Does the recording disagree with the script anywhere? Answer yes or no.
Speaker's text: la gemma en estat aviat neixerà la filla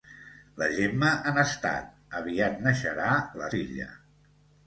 no